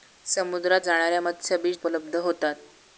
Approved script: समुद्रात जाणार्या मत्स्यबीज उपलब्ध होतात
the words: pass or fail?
pass